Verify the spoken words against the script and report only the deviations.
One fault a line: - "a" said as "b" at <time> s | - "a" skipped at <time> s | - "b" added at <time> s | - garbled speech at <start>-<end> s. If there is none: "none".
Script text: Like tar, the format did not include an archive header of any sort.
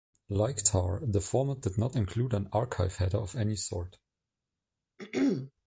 none